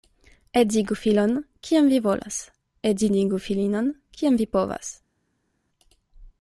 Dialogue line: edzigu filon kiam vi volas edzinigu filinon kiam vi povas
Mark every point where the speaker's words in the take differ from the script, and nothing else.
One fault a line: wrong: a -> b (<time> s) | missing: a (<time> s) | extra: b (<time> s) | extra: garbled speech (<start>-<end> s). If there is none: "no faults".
no faults